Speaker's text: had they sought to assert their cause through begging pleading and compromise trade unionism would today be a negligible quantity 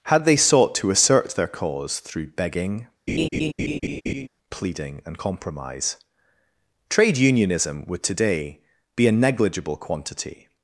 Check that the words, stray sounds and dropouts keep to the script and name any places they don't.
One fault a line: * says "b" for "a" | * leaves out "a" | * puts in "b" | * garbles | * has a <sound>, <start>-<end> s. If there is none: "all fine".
* has a laugh, 3.1-4.3 s